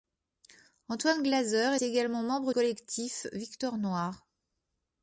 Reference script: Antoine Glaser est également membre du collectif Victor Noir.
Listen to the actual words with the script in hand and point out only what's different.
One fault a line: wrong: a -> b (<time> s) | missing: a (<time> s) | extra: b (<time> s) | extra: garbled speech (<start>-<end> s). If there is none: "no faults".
missing: est (1.8 s)
missing: du (2.5 s)